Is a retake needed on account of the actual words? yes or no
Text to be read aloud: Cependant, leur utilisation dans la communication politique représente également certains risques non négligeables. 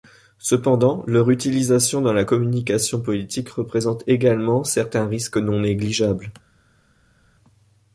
no